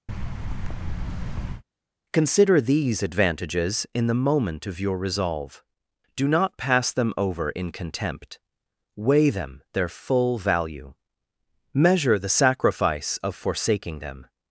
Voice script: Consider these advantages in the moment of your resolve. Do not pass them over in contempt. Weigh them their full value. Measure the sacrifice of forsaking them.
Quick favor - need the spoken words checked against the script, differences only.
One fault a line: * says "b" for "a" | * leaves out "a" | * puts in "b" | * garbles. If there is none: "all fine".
all fine